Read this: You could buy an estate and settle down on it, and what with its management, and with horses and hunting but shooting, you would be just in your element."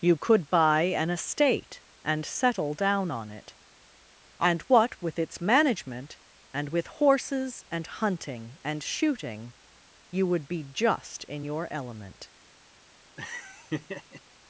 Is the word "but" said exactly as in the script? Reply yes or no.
no